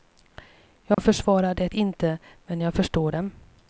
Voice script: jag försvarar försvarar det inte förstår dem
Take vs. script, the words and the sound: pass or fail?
fail